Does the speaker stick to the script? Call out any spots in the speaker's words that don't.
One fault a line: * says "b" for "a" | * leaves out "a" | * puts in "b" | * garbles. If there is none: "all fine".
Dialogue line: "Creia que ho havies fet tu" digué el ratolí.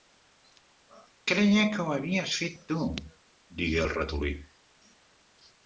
all fine